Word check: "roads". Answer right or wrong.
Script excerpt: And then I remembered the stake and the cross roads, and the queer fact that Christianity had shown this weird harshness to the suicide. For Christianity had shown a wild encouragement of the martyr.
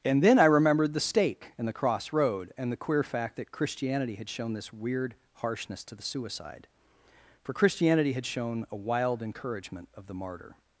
wrong